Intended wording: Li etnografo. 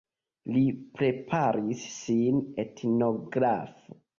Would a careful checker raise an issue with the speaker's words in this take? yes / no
yes